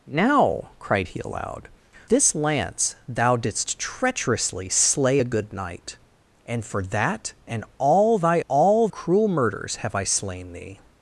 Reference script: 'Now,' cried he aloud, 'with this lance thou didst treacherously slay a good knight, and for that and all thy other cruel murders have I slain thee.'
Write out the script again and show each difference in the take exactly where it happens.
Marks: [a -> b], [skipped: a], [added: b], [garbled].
'Now,' cried he aloud, [skipped: 'with] this lance thou didst treacherously slay a good knight, and for that and all thy [other -> all] cruel murders have I slain thee.'